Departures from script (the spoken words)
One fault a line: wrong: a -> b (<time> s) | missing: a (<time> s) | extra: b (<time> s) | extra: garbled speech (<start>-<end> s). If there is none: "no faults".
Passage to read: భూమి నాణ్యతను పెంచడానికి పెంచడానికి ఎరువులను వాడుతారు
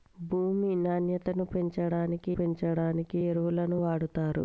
no faults